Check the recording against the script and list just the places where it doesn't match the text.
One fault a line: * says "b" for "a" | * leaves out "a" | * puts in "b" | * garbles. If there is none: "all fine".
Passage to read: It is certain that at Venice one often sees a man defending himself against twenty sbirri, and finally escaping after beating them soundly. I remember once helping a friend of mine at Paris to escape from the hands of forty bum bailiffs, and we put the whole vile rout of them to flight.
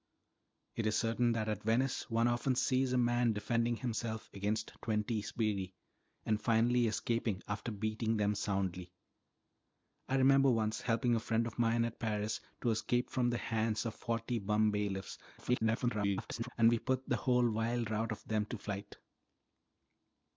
* garbles